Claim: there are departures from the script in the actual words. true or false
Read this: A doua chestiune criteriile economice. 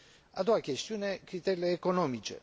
false